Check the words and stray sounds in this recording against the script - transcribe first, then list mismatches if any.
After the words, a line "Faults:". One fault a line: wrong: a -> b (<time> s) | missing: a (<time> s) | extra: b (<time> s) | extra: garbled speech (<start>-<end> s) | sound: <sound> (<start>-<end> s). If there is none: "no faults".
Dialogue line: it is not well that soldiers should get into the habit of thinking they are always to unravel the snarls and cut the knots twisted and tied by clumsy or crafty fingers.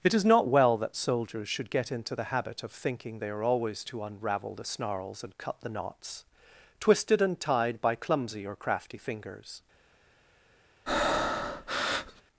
it is not well that soldiers should get into the habit of thinking they are always to unravel the snarls and cut the knots twisted and tied by clumsy or crafty fingers.
Faults:
sound: breath (10.9-12.2 s)